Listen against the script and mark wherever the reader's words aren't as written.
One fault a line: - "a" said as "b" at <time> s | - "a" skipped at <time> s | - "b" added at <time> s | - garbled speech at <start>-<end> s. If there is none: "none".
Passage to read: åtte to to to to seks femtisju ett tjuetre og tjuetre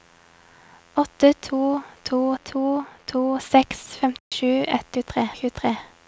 none